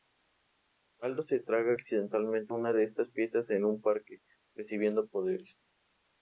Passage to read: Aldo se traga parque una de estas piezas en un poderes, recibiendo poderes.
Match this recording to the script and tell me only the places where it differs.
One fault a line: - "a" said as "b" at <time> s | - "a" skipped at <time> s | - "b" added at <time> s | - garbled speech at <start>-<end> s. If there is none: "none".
- "parque" said as "accidentalmente" at 1.7 s
- "poderes" said as "parque" at 3.8 s